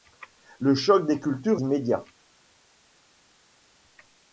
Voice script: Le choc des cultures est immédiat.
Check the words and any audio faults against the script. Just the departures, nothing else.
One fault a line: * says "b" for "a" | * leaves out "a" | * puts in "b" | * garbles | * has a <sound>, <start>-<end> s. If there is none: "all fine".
* leaves out "est"